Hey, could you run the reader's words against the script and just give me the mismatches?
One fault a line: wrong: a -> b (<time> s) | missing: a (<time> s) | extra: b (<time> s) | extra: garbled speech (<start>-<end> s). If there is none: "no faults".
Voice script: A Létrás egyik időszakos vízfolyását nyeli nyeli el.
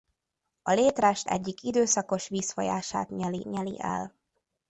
no faults